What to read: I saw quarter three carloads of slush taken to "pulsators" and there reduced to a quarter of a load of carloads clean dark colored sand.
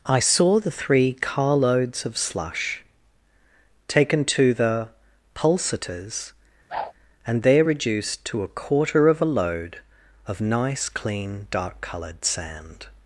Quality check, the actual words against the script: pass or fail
fail